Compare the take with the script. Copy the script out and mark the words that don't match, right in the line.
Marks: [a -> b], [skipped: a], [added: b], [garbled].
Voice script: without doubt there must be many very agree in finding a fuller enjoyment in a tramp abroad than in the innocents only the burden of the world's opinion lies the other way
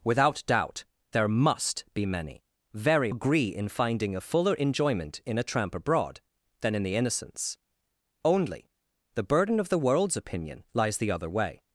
without doubt there must be many very agree in finding a fuller enjoyment in a tramp abroad than in the innocents only the burden of the world's opinion lies the other way